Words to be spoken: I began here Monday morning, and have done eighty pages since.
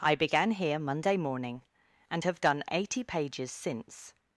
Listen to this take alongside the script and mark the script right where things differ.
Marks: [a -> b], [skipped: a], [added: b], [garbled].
I began here Monday morning, and have done eighty pages since.